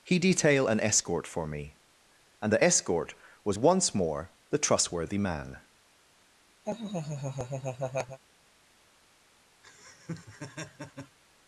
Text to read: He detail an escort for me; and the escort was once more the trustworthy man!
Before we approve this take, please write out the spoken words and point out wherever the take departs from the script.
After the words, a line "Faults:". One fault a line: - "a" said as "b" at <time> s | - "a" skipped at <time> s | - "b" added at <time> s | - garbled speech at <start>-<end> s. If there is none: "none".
He detail an escort for me; and the escort was once more the trustworthy man!
Faults:
none